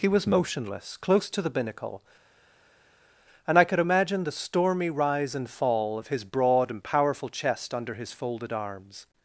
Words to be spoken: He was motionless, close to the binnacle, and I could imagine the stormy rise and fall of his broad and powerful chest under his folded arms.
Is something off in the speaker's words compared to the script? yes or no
no